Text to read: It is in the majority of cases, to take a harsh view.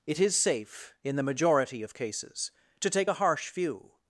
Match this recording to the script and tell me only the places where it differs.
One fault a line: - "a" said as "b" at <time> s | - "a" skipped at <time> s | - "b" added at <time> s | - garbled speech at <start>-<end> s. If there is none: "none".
- "safe" added at 0.3 s